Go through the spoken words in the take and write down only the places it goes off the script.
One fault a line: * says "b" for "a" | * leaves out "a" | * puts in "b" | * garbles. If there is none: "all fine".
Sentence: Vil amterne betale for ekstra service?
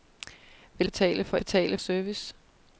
* leaves out "amterne"
* says "betale" for "ekstra"